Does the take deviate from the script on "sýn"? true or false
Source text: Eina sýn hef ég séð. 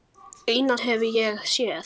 true